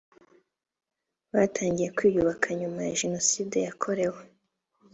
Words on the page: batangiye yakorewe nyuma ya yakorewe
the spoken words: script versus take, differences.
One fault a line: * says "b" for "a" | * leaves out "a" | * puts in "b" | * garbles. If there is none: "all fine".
* says "kwiyubaka" for "yakorewe"
* puts in "jenoside"